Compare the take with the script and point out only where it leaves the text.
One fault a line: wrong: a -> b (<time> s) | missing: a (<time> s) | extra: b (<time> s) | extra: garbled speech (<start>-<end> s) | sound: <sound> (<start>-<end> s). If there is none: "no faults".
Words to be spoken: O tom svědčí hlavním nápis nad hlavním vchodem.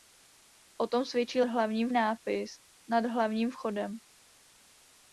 no faults